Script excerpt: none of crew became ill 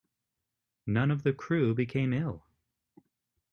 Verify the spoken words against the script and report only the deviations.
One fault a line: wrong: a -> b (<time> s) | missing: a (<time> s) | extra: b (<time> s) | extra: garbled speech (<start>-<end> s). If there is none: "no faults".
extra: the (1.2 s)